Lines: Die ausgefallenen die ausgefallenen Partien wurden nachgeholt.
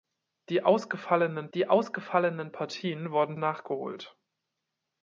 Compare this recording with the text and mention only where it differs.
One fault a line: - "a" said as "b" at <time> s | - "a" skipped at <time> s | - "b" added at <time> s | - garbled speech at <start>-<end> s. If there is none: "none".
none